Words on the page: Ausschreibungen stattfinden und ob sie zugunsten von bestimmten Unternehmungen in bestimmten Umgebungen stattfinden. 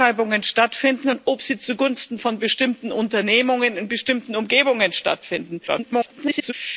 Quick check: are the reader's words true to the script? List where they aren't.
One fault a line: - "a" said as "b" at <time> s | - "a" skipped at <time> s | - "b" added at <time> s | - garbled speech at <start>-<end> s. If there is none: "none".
- garbled speech at 5.7-6.5 s